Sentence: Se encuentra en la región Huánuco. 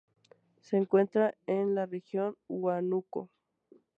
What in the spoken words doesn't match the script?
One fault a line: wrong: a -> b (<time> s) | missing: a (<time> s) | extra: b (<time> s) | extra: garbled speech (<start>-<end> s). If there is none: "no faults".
no faults